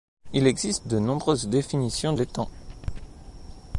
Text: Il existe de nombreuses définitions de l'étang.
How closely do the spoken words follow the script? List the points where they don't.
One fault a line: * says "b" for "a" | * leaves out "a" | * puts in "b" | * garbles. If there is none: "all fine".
* leaves out "de"